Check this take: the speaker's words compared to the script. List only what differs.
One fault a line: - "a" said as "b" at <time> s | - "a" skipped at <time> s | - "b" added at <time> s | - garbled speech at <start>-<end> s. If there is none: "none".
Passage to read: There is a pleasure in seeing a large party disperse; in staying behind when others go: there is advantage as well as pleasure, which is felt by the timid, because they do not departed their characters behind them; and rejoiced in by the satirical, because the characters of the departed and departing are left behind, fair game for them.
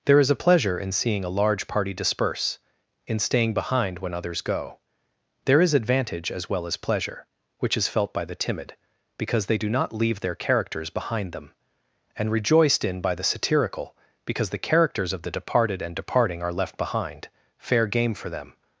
- "departed" said as "leave" at 9.9 s